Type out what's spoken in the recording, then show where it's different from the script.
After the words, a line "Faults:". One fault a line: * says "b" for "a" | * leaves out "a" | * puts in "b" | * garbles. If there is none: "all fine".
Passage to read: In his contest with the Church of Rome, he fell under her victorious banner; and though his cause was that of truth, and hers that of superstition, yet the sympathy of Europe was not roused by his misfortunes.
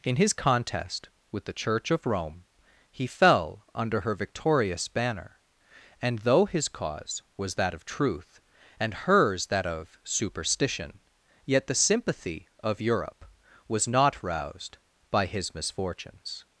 In his contest with the Church of Rome, he fell under her victorious banner; and though his cause was that of truth, and hers that of superstition, yet the sympathy of Europe was not roused by his misfortunes.
Faults:
all fine